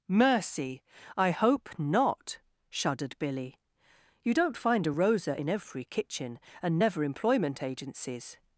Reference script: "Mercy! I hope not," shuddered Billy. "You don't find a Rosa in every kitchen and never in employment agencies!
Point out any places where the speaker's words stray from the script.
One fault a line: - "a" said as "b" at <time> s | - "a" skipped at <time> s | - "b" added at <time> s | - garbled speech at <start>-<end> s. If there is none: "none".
- "in" skipped at 7.0 s